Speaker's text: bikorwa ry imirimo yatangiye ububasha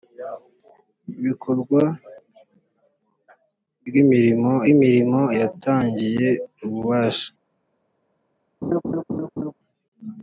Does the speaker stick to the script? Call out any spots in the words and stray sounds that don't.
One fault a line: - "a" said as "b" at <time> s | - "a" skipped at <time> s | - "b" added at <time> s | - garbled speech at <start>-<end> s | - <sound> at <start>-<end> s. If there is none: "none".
- "imirimo" added at 4.7 s
- laugh at 8.6-9.5 s